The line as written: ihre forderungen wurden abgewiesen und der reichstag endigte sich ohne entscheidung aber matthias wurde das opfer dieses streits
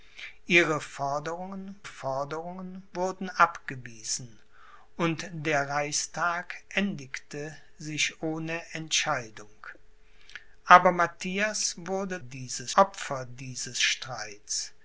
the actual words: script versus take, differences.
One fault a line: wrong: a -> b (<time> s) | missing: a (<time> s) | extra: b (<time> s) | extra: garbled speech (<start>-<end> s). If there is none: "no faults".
extra: forderungen (1.8 s)
wrong: das -> dieses (12.2 s)